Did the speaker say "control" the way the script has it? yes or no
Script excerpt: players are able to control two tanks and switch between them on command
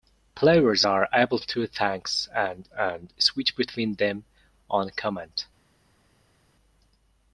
no